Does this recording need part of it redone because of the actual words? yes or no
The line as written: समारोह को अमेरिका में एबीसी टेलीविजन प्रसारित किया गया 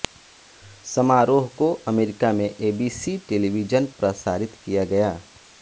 no